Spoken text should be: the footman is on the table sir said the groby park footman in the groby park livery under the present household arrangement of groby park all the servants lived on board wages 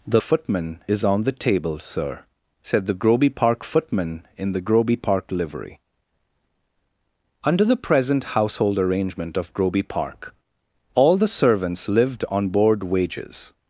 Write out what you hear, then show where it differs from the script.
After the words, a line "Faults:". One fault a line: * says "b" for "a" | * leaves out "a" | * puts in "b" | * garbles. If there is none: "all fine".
the footman is on the table sir said the groby park footman in the groby park livery under the present household arrangement of groby park all the servants lived on board wages
Faults:
all fine